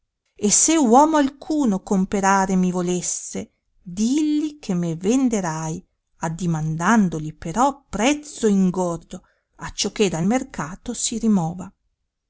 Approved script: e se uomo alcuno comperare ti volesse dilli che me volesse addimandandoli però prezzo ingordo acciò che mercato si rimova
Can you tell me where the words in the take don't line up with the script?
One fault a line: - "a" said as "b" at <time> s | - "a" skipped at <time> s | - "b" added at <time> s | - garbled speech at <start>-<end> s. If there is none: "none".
- "ti" said as "mi" at 2.5 s
- "volesse" said as "venderai" at 5.0 s
- "dal" added at 10.1 s